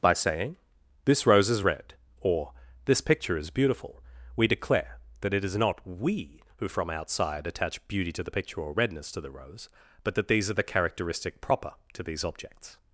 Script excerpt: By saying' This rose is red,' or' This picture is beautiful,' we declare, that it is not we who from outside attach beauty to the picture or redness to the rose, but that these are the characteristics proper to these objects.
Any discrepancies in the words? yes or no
yes